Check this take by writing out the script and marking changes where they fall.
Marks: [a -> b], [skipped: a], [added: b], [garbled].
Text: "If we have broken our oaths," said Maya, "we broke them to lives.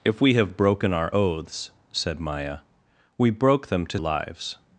"If we have broken our oaths," said Maya, "we broke them to lives.